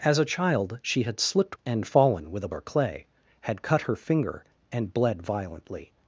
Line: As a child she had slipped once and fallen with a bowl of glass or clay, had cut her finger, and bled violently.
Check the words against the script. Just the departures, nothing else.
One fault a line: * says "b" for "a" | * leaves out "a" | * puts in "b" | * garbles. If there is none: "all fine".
* leaves out "once"
* leaves out "bowl of glass"